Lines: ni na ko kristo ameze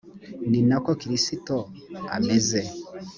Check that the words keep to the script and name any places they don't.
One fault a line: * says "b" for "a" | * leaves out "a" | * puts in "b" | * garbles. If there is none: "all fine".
all fine